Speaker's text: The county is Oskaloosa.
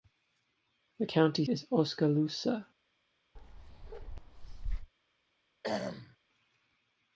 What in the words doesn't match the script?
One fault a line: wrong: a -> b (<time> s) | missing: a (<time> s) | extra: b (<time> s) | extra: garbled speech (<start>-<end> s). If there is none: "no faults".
no faults